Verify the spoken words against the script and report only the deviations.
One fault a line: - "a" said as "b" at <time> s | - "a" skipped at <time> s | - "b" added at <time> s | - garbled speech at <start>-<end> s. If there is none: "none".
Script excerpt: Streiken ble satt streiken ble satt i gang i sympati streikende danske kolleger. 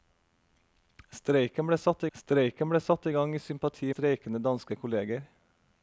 none